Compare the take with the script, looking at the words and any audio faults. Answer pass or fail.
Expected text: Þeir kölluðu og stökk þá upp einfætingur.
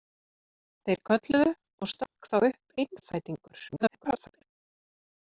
fail